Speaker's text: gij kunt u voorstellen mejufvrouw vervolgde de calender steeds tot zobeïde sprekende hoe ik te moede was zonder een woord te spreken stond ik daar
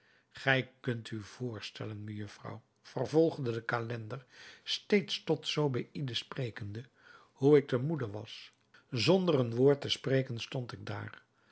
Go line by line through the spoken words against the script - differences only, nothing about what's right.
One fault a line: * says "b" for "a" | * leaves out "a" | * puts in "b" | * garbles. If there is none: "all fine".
all fine